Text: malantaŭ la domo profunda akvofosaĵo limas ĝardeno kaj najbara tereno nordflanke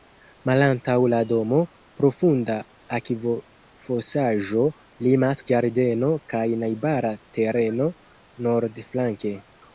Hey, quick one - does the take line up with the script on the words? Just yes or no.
yes